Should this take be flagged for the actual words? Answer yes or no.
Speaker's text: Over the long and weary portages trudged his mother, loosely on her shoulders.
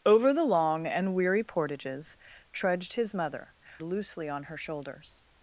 no